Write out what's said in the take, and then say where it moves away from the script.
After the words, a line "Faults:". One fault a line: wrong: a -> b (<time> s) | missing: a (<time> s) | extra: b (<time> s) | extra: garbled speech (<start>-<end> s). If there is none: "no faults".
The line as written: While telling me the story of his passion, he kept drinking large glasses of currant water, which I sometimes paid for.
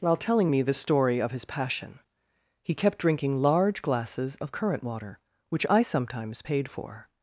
While telling me the story of his passion, he kept drinking large glasses of currant water, which I sometimes paid for.
Faults:
no faults